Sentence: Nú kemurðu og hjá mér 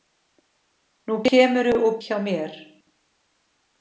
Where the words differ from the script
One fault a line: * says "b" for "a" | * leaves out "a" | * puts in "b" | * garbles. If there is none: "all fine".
all fine